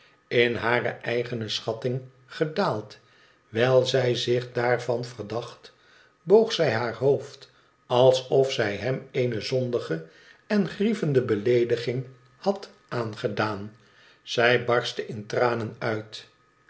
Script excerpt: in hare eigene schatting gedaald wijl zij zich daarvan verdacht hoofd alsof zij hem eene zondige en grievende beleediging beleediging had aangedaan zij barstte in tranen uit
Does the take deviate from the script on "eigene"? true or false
false